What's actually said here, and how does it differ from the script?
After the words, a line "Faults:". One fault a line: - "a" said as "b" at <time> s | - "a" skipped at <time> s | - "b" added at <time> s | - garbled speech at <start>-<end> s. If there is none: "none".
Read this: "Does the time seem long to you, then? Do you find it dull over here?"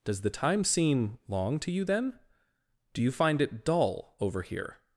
"Does the time seem long to you, then? Do you find it dull over here?"
Faults:
none